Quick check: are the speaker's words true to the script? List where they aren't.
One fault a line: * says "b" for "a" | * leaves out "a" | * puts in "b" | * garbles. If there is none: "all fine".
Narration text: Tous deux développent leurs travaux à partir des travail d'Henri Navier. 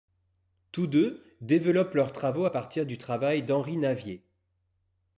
* says "du" for "des"